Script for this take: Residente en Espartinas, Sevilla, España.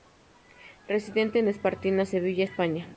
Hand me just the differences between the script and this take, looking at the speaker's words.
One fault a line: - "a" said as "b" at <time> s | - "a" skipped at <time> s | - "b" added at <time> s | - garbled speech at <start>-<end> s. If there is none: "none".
none